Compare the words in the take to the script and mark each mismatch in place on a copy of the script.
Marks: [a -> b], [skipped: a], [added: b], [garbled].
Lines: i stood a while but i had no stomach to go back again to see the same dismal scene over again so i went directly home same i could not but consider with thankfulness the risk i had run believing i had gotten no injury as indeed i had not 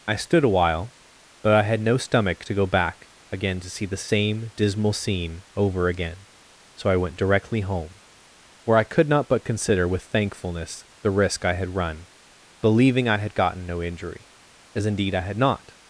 i stood a while but i had no stomach to go back again to see the same dismal scene over again so i went directly home [same -> where] i could not but consider with thankfulness the risk i had run believing i had gotten no injury as indeed i had not